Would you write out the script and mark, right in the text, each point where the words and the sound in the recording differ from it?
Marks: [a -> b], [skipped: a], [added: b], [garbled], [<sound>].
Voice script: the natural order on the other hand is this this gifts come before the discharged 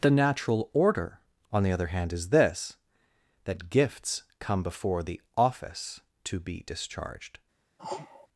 the natural order on the other hand is this [this -> that] gifts come before the [added: office to be] discharged [sneeze]